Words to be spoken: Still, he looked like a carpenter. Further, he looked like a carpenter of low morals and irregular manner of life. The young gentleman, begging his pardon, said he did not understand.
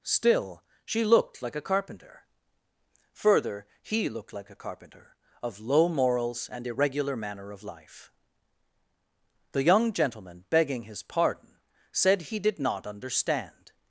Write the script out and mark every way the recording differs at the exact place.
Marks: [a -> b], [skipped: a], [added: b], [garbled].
Still, [he -> she] looked like a carpenter. Further, he looked like a carpenter of low morals and irregular manner of life. The young gentleman, begging his pardon, said he did not understand.